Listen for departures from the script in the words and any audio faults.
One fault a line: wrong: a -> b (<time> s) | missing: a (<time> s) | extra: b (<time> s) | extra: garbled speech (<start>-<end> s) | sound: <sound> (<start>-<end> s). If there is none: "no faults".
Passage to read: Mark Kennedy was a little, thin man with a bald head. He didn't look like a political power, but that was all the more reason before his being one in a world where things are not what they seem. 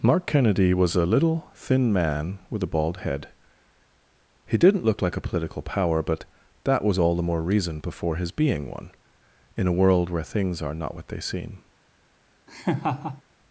sound: laugh (12.5-13.2 s)